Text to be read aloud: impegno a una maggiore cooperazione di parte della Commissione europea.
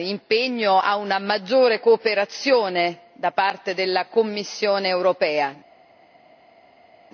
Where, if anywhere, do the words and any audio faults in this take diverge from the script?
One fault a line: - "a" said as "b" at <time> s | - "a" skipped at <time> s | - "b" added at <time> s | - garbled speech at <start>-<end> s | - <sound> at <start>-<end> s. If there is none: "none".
- "di" said as "da" at 3.1 s